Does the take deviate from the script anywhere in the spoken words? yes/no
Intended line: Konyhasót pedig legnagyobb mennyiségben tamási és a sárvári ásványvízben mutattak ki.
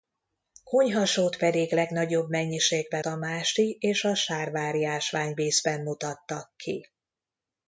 no